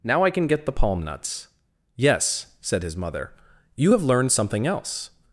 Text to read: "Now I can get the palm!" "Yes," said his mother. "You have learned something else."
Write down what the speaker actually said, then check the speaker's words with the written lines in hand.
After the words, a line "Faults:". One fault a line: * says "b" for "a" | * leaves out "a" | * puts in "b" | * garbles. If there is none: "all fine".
"Now I can get the palm nuts!" "Yes," said his mother. "You have learned something else."
Faults:
* puts in "nuts"